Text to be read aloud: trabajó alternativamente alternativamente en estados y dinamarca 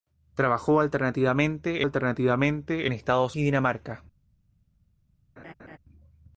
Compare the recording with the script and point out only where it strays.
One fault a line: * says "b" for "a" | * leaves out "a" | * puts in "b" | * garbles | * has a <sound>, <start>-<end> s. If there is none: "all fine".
* has a laugh, 5.4-5.8 s